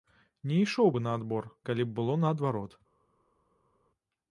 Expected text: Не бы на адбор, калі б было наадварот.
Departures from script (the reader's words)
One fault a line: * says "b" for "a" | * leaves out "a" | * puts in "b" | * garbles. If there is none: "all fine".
* puts in "ішоў"